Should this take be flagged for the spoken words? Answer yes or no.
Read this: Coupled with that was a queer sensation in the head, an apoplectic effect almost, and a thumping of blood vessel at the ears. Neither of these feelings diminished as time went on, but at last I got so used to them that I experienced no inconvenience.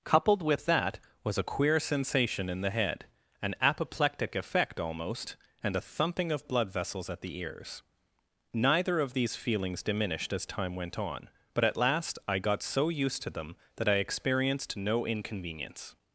yes